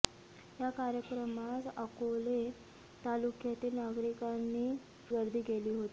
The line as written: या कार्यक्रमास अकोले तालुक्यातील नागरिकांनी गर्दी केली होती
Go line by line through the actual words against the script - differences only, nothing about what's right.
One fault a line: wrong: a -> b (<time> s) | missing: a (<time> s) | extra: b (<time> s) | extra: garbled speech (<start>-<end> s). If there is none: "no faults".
no faults